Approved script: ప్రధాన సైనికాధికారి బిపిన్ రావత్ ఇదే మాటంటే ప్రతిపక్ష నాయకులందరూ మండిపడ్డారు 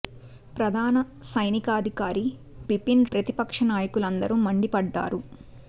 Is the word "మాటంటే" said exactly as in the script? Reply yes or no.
no